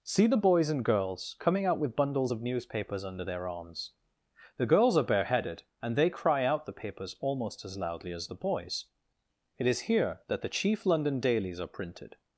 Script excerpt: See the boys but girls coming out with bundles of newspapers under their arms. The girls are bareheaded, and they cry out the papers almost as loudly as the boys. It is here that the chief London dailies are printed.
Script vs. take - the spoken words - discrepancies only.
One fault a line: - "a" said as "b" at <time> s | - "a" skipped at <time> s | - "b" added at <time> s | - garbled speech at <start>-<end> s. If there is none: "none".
- "but" said as "and" at 0.7 s